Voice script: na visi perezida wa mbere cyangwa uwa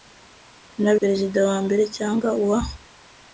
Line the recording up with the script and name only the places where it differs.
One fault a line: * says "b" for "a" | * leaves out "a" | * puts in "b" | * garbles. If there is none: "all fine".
* leaves out "visi"